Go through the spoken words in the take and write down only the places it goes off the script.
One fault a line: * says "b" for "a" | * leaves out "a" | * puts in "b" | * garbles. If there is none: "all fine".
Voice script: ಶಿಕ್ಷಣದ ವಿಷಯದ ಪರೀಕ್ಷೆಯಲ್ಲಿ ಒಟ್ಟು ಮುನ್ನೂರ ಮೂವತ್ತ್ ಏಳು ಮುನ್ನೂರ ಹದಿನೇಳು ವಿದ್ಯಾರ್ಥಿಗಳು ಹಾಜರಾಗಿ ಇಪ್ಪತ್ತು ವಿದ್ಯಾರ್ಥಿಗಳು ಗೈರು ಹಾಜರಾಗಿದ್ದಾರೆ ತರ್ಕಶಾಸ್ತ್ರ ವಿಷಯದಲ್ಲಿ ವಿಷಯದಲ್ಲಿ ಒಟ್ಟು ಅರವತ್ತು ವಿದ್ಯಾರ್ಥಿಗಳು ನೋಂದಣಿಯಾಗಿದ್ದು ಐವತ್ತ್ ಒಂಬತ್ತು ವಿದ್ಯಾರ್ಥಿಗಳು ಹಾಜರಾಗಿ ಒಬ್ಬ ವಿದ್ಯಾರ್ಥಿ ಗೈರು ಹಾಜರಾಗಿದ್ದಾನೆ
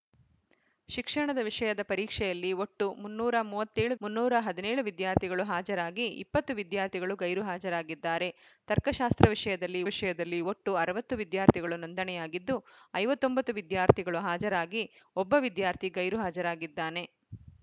all fine